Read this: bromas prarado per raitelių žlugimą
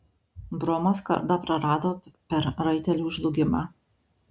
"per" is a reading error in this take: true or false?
false